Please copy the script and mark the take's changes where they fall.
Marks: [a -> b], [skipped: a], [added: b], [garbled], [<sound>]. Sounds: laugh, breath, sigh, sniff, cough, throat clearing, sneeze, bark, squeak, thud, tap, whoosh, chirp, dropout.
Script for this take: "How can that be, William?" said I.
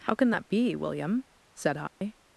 "How can that be, William?" said I. [dropout]